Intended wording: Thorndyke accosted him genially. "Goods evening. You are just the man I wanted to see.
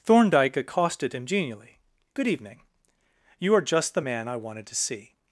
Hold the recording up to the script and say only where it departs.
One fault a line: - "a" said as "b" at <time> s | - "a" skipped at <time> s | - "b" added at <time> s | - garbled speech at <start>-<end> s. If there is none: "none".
- "Goods" said as "Good" at 2.1 s